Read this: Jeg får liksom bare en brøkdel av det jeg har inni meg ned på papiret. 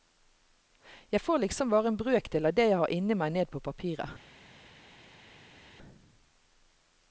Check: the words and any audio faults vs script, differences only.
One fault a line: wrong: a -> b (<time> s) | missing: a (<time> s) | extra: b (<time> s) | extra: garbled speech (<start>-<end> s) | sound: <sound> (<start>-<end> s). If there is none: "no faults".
no faults